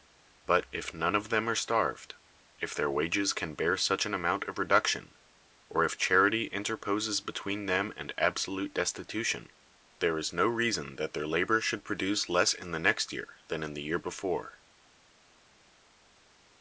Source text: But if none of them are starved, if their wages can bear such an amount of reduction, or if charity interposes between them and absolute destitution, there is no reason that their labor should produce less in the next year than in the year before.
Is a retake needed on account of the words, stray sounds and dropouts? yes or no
no